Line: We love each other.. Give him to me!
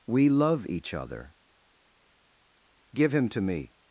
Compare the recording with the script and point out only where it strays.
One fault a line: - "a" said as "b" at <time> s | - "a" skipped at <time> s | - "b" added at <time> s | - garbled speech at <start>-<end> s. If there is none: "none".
none